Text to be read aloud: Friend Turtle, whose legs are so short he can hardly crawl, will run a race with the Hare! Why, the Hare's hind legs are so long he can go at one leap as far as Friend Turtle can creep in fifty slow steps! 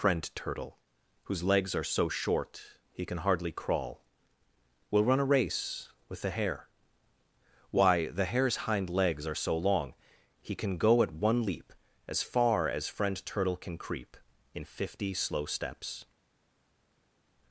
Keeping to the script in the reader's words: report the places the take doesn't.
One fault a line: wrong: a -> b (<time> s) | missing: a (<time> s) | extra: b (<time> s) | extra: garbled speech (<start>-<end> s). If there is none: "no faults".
no faults